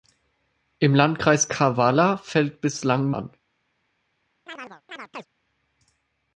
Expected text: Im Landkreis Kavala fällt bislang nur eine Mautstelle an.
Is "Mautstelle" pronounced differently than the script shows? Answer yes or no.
yes